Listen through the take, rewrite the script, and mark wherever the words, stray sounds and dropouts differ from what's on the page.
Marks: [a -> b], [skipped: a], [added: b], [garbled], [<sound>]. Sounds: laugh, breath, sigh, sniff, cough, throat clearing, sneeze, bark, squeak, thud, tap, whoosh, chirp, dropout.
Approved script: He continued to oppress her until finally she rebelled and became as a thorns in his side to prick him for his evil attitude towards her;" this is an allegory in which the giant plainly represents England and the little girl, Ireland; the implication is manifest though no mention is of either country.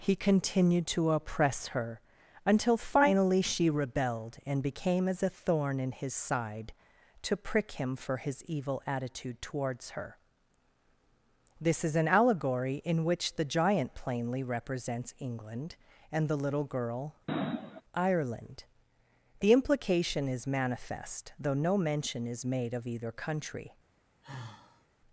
He continued to oppress her until finally she rebelled and became as a [thorns -> thorn] in his side to prick him for his evil attitude towards her;" this is an allegory in which the giant plainly represents England and the little girl, [sniff] Ireland; the implication is manifest though no mention is [added: made] of either country. [sigh]